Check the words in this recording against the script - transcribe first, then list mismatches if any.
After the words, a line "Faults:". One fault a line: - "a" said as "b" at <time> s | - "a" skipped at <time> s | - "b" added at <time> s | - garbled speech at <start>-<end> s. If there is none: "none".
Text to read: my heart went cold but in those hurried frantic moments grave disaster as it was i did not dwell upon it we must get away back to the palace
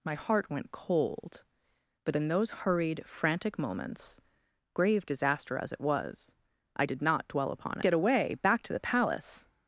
my heart went cold but in those hurried frantic moments grave disaster as it was i did not dwell upon get away back to the palace
Faults:
- "it we must" skipped at 7.8 s